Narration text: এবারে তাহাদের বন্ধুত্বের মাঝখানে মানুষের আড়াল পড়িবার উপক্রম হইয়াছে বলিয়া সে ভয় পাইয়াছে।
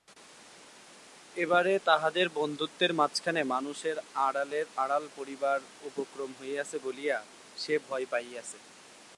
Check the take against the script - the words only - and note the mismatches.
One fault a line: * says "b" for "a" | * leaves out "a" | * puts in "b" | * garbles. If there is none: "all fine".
all fine